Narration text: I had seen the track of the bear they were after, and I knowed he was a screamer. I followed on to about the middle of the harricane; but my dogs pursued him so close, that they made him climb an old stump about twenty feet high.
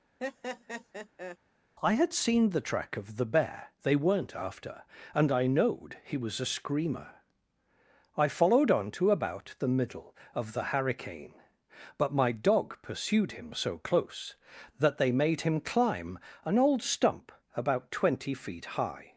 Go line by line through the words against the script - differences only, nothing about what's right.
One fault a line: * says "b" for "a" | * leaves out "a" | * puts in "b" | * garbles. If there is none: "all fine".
* says "weren't" for "were"
* says "dog" for "dogs"